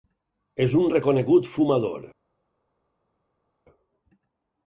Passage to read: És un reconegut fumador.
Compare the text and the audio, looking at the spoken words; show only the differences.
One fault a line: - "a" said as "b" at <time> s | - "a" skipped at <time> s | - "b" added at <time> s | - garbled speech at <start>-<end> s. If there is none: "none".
none